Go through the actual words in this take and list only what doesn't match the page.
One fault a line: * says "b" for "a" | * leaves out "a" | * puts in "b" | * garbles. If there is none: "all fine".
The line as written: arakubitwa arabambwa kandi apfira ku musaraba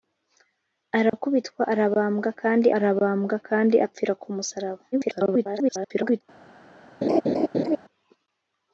* puts in "arabambwa kandi"
* garbles